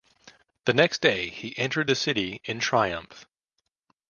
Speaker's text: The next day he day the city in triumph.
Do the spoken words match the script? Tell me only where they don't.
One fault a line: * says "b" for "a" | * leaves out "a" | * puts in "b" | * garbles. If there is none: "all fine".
* says "entered" for "day"